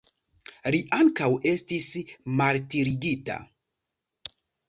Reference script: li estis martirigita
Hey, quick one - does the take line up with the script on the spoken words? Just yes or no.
no